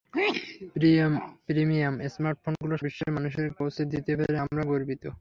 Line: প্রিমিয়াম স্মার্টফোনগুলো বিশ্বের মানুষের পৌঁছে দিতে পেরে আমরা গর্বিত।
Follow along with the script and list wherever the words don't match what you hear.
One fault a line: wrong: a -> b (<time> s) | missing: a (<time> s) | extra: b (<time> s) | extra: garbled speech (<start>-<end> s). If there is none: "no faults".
no faults